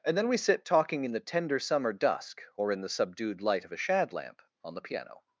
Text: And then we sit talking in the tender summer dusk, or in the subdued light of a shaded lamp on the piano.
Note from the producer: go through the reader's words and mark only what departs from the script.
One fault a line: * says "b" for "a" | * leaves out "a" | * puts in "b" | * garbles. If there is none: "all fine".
* says "shad" for "shaded"